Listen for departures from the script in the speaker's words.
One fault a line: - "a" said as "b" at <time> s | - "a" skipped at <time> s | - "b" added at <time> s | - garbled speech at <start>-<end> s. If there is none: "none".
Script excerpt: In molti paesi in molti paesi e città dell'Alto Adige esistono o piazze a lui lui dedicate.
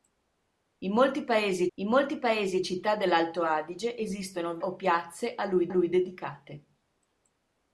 none